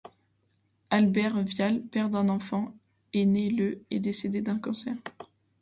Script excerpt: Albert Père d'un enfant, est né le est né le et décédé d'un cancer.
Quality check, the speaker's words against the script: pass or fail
fail